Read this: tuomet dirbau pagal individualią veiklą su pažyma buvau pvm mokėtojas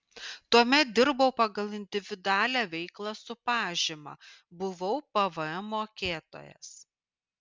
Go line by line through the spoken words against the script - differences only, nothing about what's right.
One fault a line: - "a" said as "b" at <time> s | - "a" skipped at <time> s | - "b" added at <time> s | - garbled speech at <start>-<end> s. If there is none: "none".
none